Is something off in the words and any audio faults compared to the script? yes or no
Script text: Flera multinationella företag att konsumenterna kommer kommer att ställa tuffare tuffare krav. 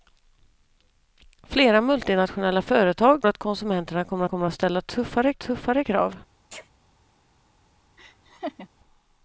yes